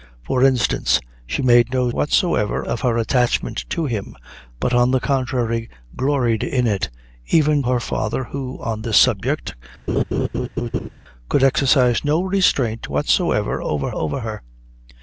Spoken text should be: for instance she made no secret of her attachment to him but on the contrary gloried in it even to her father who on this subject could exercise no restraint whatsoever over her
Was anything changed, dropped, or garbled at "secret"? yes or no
yes